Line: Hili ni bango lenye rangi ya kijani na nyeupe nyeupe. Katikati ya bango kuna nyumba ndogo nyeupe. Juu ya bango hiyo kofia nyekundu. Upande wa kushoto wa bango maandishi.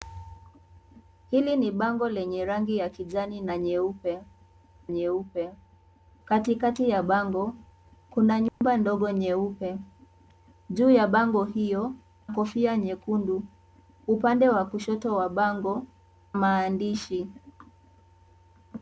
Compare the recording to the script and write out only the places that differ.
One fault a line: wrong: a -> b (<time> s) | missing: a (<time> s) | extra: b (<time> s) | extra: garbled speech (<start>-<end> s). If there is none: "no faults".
no faults